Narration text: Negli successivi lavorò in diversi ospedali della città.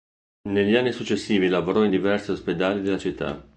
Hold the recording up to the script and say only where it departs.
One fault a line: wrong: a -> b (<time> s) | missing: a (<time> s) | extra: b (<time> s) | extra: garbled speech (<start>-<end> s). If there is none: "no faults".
extra: anni (0.8 s)